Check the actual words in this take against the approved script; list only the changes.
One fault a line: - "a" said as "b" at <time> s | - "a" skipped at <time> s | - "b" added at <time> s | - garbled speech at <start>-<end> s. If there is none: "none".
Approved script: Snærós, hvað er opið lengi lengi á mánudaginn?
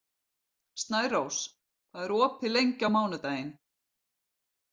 - "lengi" skipped at 2.9 s